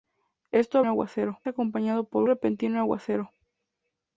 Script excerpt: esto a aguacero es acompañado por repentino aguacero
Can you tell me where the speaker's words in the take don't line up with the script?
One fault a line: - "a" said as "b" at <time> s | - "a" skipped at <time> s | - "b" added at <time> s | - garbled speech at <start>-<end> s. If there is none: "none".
none